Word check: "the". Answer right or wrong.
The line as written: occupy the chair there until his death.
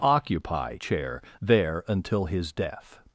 wrong